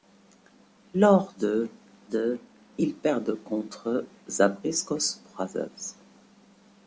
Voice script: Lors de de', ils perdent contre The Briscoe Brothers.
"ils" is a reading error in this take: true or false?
false